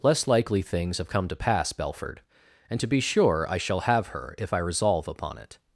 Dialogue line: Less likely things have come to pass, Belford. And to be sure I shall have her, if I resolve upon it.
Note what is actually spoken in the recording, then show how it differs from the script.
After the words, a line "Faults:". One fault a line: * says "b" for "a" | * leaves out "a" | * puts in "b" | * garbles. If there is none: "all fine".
Less likely things have come to pass, Belford. And to be sure I shall have her, if I resolve upon it.
Faults:
all fine